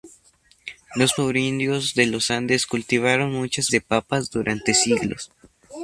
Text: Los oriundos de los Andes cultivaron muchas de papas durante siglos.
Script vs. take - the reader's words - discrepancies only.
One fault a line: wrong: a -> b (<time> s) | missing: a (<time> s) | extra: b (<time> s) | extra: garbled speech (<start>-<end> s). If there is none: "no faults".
no faults